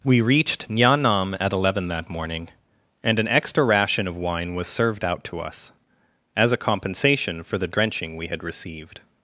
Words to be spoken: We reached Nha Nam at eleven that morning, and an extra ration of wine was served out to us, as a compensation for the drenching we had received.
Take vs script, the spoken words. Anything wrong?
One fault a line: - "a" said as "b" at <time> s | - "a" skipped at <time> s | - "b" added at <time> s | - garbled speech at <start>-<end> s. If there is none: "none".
none